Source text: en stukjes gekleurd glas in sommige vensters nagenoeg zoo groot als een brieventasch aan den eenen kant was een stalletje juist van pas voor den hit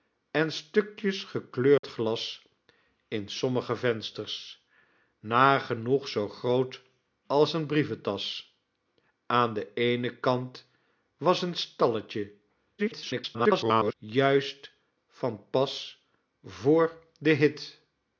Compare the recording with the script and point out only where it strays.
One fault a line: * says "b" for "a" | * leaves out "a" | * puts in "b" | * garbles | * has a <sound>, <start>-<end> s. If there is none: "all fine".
* has a dropout, 1.8-1.8 s
* garbles